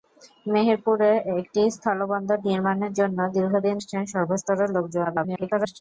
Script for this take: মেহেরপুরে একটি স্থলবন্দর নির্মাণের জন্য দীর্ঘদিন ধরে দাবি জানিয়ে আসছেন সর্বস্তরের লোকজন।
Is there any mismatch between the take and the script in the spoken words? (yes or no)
yes